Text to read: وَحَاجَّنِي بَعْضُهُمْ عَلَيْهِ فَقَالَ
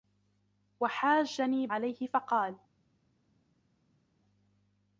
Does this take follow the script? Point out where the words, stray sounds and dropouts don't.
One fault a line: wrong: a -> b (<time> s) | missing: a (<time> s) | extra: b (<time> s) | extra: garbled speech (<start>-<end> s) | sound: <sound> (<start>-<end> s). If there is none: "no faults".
missing: بَعْضُهُمْ (1.7 s)